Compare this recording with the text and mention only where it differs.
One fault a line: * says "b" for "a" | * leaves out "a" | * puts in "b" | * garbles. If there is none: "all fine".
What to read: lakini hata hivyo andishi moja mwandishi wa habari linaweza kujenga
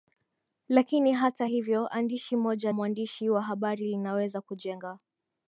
all fine